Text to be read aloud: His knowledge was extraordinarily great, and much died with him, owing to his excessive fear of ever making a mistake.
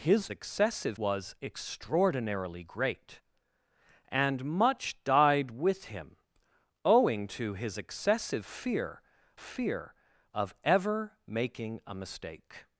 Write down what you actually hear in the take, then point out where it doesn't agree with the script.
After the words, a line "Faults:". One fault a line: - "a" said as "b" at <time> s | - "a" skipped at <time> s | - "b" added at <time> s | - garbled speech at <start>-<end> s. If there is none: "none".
His excessive was extraordinarily great, and much died with him, owing to his excessive fear fear of ever making a mistake.
Faults:
- "knowledge" said as "excessive" at 0.3 s
- "fear" added at 9.4 s